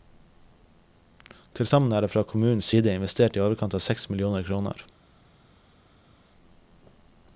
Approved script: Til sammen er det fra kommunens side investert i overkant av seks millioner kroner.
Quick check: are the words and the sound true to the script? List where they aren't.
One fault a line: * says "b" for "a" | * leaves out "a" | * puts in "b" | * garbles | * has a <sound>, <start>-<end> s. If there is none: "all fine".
all fine